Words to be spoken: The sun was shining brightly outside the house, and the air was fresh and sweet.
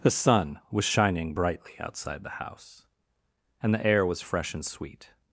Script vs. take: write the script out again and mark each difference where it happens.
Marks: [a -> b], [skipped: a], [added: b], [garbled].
The sun was shining brightly outside the house, and the air was fresh and sweet.